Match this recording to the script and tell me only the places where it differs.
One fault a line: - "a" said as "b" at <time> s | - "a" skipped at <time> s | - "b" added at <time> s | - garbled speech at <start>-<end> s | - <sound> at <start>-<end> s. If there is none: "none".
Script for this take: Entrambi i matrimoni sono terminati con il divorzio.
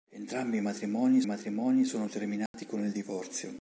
- "matrimoni" added at 1.2 s
- dropout at 2.5-2.5 s